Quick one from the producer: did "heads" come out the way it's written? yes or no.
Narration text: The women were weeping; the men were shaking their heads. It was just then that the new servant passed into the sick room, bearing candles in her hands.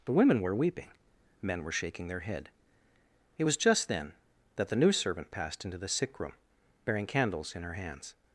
no